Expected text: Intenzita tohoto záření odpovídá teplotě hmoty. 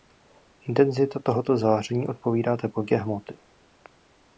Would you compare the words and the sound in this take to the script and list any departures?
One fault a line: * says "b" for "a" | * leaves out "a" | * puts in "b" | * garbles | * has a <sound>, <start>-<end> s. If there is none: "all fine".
all fine